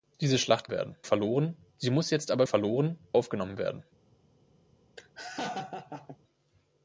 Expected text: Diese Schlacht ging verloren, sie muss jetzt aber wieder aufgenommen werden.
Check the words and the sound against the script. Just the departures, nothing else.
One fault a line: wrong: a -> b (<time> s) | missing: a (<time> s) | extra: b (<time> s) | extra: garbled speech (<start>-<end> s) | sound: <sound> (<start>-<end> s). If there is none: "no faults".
wrong: ging -> werden (0.7 s)
wrong: wieder -> verloren (2.4 s)
sound: laugh (5.0-6.2 s)